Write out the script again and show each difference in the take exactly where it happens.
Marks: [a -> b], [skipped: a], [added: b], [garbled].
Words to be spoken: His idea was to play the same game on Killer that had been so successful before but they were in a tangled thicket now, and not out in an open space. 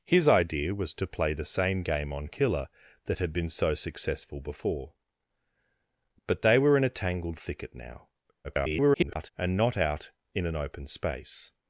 His idea was to play the same game on Killer that had been so successful before but they were in a tangled thicket now, [garbled] and not out in an open space.